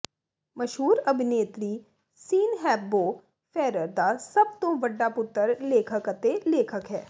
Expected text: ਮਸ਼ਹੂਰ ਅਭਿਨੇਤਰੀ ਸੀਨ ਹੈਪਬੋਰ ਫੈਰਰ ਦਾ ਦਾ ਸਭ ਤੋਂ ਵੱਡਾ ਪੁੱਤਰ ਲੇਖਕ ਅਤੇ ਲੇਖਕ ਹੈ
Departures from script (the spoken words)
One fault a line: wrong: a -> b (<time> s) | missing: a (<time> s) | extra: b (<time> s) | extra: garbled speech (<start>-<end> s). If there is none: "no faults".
missing: ਦਾ (4.2 s)